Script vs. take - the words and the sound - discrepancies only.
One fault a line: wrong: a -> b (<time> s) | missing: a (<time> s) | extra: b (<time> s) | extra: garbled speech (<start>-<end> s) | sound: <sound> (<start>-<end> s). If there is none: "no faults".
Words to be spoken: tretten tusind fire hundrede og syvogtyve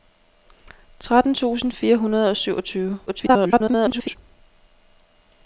extra: garbled speech (3.1-4.2 s)